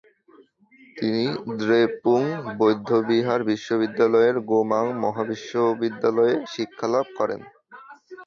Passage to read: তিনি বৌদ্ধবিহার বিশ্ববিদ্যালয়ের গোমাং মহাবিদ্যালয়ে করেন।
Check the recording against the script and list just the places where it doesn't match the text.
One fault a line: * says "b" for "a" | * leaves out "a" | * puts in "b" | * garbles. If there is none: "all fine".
* puts in "দ্রেপুং"
* puts in "শিক্ষালাভ"